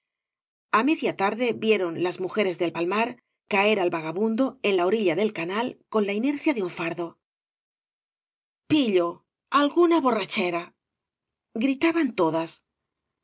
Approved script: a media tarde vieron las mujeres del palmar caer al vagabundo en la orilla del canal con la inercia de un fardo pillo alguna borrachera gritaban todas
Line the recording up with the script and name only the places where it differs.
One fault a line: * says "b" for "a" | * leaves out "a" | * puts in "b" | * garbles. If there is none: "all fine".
all fine